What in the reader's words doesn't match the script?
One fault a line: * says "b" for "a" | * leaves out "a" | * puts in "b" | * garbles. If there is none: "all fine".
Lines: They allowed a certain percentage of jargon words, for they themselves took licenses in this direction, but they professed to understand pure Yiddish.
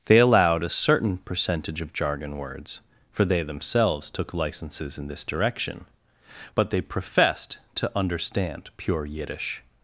all fine